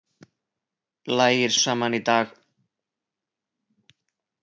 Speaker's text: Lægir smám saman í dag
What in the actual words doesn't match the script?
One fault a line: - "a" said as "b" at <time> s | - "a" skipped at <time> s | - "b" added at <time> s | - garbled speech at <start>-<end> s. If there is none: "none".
- "smám" skipped at 1.5 s